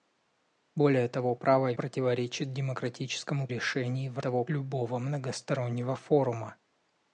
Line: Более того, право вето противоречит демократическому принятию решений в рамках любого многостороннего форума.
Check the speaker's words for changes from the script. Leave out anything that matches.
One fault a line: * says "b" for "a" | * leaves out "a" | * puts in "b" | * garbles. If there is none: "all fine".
* leaves out "вето"
* leaves out "принятию"
* says "того" for "рамках"